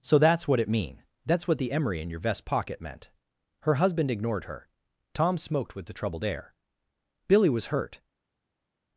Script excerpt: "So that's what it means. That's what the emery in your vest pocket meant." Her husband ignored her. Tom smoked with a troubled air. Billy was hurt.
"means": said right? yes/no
no